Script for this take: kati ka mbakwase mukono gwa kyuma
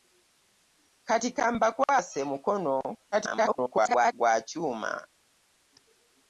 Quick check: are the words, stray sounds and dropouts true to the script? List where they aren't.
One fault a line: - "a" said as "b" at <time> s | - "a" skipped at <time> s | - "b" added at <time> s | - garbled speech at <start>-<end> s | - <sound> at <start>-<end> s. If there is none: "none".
- garbled speech at 3.1-4.1 s